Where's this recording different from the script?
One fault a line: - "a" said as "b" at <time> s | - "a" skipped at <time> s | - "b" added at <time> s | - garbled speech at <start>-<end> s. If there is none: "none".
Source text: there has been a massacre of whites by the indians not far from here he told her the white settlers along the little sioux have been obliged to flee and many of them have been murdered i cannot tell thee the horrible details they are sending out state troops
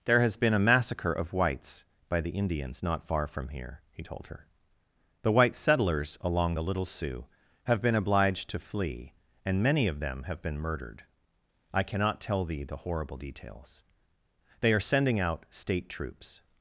none